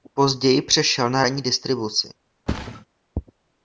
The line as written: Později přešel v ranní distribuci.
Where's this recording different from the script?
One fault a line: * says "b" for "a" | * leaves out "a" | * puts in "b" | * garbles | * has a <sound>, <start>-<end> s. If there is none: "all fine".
* says "na" for "v"
* has a thud, 2.5-2.9 s